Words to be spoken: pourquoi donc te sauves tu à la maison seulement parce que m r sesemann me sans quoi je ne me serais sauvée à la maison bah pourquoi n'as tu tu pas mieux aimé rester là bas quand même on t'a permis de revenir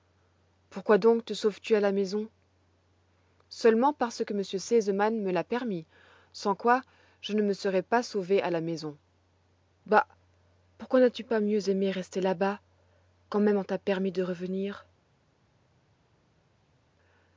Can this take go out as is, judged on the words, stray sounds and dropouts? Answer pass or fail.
fail